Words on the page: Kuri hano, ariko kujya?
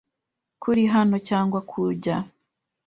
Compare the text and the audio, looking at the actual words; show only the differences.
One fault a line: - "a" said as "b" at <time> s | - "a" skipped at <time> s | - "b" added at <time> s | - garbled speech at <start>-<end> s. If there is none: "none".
- "ariko" said as "cyangwa" at 1.3 s